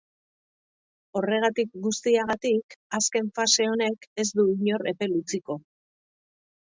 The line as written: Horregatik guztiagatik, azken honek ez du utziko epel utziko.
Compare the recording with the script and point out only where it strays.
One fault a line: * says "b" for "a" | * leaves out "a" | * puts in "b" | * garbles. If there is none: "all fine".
* puts in "fase"
* says "inor" for "utziko"